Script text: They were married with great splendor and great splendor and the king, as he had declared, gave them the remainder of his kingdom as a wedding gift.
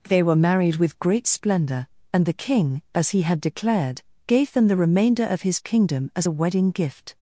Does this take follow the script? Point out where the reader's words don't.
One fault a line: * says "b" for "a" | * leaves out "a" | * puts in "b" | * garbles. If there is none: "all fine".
* leaves out "great splendor and"